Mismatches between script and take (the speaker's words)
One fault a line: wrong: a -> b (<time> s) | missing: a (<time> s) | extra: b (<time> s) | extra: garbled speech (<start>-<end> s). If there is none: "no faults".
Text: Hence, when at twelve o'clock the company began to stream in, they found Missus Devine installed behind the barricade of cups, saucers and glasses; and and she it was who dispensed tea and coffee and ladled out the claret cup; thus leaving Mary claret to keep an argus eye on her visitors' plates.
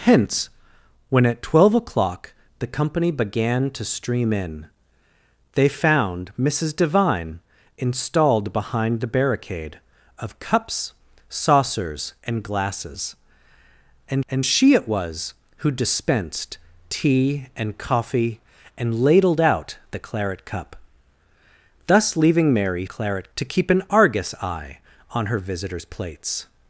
no faults